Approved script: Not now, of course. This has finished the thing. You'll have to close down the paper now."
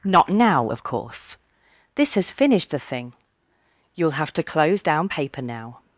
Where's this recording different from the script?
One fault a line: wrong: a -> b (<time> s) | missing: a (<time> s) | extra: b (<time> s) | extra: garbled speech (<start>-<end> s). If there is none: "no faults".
missing: the (5.1 s)